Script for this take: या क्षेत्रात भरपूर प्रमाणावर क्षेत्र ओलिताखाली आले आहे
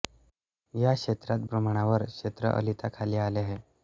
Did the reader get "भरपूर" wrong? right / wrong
wrong